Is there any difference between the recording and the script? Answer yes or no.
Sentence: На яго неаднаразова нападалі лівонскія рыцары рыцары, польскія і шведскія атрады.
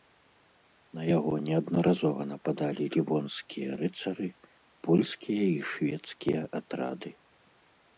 yes